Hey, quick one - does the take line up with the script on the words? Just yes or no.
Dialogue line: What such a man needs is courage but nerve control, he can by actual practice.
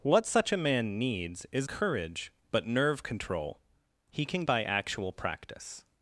yes